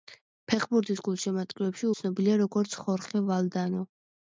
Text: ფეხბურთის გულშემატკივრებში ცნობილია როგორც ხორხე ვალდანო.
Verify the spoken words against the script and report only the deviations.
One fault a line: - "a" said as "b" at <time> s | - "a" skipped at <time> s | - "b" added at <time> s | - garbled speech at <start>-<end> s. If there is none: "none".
none